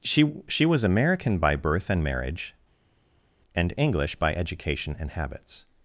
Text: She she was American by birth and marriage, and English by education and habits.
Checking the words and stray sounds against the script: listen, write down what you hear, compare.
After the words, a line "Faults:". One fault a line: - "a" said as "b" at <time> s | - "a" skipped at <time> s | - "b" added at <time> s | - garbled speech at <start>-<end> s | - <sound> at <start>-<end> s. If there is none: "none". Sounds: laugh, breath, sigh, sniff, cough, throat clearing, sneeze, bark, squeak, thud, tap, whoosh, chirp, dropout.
She she was American by birth and marriage, and English by education and habits.
Faults:
none